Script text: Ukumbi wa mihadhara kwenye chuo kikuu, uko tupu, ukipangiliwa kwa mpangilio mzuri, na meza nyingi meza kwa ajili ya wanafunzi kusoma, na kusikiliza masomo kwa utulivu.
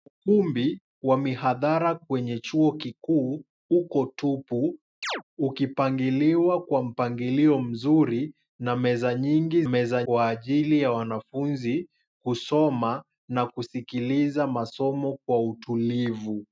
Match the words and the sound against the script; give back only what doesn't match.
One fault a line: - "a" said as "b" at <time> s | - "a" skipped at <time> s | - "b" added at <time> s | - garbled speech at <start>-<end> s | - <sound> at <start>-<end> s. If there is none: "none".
- chirp at 5.0-5.2 s